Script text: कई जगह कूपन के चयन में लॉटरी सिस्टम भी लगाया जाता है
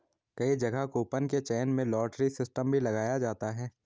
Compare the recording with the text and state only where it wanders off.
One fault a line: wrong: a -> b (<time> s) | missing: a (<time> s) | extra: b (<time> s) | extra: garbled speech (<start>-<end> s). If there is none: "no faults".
no faults